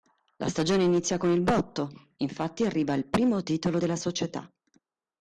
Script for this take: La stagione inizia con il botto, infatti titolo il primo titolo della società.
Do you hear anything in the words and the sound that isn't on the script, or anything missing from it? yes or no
yes